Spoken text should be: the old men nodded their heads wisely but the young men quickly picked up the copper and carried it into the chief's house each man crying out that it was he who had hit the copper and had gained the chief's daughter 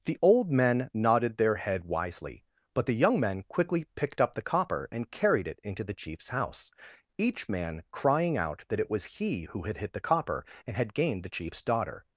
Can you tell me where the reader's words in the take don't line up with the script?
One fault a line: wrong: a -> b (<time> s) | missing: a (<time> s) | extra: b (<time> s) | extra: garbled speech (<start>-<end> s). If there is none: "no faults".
wrong: heads -> head (1.6 s)